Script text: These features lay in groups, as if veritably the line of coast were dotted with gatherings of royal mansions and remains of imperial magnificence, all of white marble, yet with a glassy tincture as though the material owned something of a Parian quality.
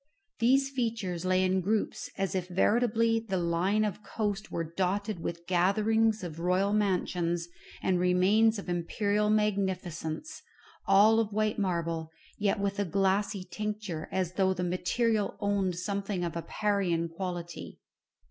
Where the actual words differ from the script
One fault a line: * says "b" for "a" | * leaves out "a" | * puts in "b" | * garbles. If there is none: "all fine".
all fine